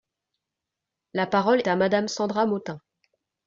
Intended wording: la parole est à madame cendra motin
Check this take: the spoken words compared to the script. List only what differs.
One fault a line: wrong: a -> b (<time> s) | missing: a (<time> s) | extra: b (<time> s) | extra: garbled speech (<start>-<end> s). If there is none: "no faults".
missing: est (1.6 s)